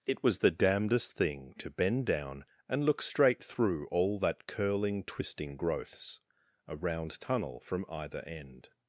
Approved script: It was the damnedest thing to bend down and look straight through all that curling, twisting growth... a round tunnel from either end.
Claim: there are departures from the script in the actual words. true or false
true